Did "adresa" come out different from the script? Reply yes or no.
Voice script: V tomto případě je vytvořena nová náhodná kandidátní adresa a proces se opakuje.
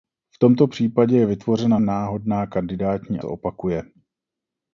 yes